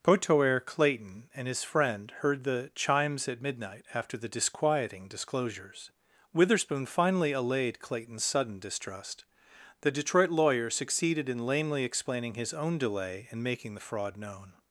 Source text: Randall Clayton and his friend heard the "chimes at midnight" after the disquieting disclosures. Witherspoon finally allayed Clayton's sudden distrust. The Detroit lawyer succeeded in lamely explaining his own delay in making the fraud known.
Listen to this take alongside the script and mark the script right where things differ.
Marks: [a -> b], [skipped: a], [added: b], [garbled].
[Randall -> Potoer] Clayton and his friend heard the "chimes at midnight" after the disquieting disclosures. Witherspoon finally allayed Clayton's sudden distrust. The Detroit lawyer succeeded in lamely explaining his own delay in making the fraud known.